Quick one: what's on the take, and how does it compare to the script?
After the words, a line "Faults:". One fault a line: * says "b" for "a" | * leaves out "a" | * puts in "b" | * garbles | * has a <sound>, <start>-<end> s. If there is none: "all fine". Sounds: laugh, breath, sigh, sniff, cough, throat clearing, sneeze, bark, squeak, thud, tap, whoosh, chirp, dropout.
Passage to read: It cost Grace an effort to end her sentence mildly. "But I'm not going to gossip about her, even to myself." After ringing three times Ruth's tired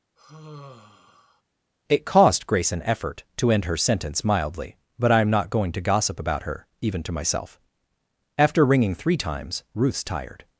It cost Grace an effort to end her sentence mildly. "But I'm not going to gossip about her, even to myself." After ringing three times Ruth's tired
Faults:
* has a sigh, 0.2-1.4 s